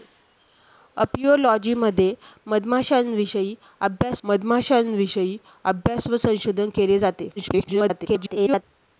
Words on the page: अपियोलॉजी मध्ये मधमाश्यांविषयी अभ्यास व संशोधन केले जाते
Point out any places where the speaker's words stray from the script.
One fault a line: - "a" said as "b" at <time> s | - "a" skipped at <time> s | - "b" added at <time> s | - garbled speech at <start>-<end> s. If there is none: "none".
- "मधमाश्यांविषयी अभ्यास" added at 4.2 s
- garbled speech at 7.4-8.6 s